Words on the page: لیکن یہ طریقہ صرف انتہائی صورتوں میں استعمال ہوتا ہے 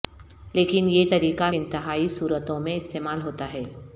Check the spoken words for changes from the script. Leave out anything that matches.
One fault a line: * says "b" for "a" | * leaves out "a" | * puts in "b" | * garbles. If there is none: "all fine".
* leaves out "صرف"